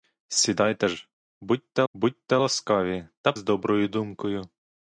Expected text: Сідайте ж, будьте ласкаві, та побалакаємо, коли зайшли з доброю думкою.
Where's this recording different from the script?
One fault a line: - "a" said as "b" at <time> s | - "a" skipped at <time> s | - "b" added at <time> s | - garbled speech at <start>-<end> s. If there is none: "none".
- "будьте" added at 1.9 s
- "побалакаємо коли зайшли" skipped at 3.3 s